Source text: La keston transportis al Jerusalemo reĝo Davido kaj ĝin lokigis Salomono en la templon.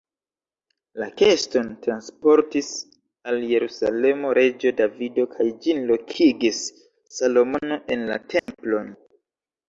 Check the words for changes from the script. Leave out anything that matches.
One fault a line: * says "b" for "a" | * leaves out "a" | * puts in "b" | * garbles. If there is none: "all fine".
all fine